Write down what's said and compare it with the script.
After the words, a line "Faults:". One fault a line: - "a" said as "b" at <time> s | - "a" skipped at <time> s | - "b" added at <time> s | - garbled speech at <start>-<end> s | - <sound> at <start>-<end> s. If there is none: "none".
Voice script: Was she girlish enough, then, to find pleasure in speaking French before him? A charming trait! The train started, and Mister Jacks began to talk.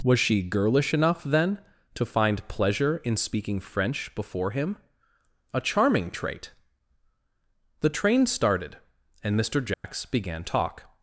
Was she girlish enough, then, to find pleasure in speaking French before him? A charming trait! The train started, and Mister Jacks began talk.
Faults:
- dropout at 9.7-9.8 s
- "to" skipped at 10.4 s